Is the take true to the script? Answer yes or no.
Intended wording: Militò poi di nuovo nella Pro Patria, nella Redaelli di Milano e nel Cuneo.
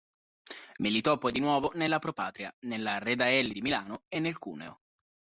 yes